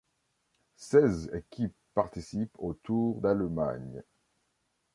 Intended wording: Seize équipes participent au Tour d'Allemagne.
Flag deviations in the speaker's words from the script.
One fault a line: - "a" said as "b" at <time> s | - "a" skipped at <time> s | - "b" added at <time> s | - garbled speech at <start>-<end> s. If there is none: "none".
none